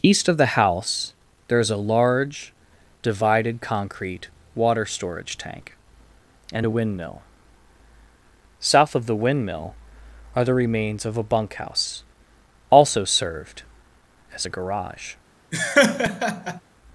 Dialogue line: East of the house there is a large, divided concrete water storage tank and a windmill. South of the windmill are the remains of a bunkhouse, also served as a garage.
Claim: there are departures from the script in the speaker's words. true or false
false